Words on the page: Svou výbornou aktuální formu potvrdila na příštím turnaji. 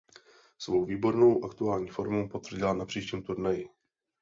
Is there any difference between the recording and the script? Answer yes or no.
no